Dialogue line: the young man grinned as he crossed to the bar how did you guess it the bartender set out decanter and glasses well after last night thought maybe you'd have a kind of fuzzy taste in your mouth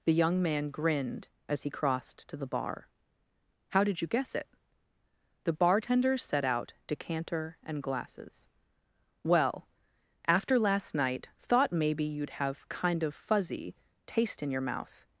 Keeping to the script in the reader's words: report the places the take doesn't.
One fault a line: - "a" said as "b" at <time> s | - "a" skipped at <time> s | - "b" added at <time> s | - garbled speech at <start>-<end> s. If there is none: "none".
- "a" skipped at 12.7 s